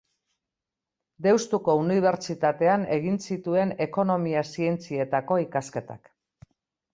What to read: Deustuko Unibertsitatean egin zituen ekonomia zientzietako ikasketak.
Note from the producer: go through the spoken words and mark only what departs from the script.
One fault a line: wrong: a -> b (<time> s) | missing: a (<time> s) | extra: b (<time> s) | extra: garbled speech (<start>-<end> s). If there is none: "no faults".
no faults